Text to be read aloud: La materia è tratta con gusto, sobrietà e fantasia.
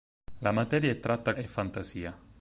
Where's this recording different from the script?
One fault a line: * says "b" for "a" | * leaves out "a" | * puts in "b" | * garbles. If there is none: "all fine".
* leaves out "con gusto sobrietà"